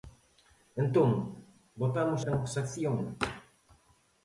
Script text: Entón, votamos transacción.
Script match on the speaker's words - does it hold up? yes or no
yes